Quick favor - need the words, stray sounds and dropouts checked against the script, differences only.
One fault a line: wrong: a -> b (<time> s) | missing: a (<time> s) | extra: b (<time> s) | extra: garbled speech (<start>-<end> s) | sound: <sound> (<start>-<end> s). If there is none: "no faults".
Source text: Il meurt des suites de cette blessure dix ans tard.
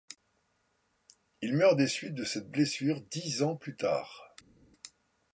extra: plus (3.5 s)